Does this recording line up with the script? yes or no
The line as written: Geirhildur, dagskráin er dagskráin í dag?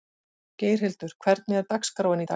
no